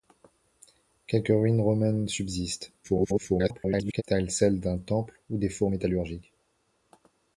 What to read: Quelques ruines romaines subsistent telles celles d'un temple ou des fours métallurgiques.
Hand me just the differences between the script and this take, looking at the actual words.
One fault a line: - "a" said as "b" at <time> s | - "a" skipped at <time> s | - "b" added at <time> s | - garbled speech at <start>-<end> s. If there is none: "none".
- garbled speech at 2.8-4.0 s